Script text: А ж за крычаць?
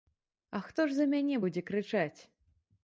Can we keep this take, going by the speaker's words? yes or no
no